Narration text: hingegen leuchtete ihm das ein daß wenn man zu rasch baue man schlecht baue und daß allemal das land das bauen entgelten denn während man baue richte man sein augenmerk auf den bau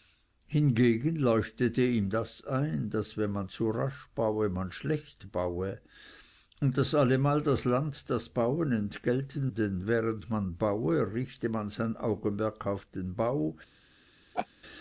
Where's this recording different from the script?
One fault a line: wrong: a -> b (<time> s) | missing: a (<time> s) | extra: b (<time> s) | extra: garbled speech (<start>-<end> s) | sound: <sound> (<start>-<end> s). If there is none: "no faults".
sound: laugh (14.3-14.5 s)